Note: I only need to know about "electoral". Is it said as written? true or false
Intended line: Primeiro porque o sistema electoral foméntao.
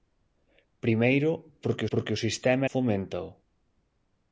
false